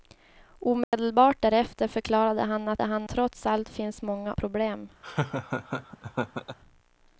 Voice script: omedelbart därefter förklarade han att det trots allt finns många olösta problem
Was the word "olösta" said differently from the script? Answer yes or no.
yes